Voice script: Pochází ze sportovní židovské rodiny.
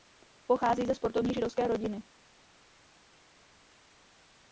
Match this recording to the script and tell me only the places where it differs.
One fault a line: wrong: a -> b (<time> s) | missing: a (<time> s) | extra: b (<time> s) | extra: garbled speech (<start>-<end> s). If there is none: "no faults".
no faults